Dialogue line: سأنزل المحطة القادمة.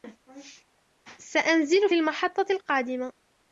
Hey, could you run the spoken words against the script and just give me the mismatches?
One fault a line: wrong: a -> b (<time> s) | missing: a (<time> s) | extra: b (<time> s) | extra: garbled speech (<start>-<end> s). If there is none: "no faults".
no faults